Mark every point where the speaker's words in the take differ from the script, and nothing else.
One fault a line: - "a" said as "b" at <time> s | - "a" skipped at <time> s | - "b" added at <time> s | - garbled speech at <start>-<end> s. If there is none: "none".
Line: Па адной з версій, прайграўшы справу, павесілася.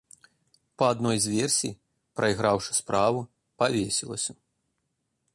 none